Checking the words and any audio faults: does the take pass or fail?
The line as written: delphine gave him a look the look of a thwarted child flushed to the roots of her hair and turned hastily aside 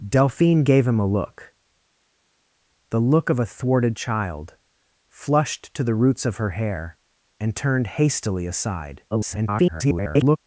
fail